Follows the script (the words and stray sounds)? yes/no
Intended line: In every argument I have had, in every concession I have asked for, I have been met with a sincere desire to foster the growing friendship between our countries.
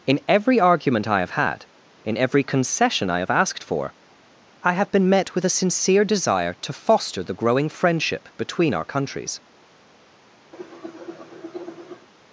no